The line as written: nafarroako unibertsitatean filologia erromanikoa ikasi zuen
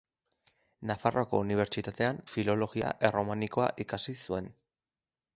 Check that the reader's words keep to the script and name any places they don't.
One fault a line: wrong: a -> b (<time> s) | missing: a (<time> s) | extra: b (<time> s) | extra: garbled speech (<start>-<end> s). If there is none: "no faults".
no faults